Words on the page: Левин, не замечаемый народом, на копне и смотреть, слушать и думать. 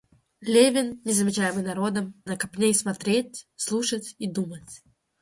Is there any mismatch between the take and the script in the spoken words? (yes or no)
no